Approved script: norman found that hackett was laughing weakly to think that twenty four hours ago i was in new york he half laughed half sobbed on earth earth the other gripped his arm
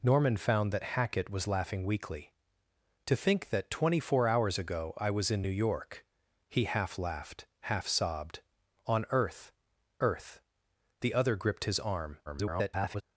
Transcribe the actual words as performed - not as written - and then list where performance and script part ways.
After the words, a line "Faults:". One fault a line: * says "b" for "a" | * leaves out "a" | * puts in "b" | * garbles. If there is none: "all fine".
norman found that hackett was laughing weakly to think that twenty four hours ago i was in new york he half laughed half sobbed on earth earth the other gripped his arm [garbled]
Faults:
* garbles